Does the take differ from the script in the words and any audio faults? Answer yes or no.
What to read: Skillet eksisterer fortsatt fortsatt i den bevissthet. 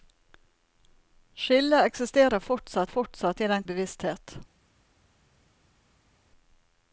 no